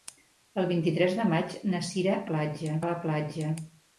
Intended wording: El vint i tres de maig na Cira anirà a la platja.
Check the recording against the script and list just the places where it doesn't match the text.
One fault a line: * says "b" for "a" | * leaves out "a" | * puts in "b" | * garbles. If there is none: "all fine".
* says "platja" for "anirà"